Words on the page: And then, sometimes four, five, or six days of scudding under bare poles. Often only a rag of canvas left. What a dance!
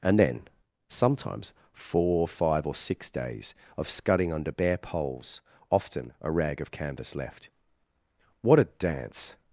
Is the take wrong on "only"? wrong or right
wrong